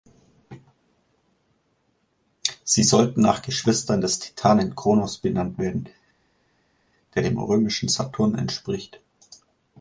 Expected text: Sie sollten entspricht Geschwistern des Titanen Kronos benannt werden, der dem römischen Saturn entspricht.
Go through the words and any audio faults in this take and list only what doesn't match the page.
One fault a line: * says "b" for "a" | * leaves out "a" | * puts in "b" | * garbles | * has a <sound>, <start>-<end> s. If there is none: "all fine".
* says "nach" for "entspricht"